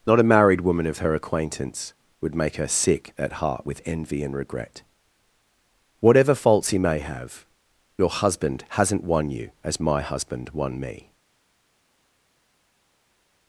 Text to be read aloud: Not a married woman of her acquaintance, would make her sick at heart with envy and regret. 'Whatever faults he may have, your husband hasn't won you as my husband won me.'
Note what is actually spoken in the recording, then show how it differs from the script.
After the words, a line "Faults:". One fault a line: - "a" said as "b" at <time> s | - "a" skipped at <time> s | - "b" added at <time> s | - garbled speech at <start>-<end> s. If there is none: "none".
Not a married woman of her acquaintance, would make her sick at heart with envy and regret. 'Whatever faults he may have, your husband hasn't won you as my husband won me.'
Faults:
none